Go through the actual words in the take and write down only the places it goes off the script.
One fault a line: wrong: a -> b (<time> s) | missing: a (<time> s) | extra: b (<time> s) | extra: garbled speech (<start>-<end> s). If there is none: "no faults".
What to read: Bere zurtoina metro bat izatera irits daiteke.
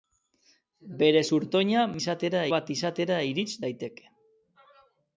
wrong: metro -> izatera (2.0 s)